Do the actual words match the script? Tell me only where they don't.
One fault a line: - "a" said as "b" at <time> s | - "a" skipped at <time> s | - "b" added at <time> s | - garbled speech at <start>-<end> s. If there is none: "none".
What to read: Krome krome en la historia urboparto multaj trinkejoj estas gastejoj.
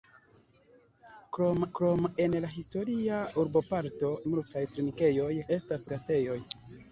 none